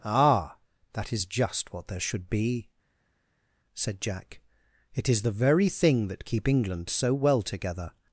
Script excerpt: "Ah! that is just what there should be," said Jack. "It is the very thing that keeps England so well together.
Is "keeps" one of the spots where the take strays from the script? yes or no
yes